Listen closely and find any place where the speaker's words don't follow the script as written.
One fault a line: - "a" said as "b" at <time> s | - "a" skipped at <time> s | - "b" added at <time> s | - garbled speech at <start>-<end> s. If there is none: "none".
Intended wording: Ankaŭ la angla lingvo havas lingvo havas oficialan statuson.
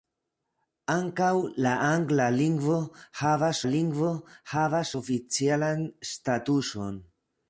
none